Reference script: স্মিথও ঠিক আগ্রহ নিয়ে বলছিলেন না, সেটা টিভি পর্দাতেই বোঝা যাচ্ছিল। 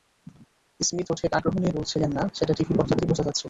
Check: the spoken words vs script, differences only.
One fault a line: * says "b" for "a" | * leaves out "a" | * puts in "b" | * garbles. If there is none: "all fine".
all fine